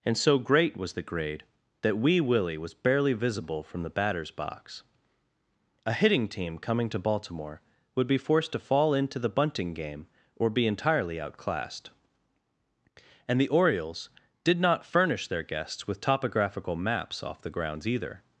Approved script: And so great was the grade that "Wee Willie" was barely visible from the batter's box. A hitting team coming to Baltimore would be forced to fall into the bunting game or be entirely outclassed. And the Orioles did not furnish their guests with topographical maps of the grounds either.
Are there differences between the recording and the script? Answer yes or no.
yes